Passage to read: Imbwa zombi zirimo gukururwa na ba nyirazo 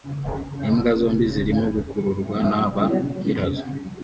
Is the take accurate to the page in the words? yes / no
yes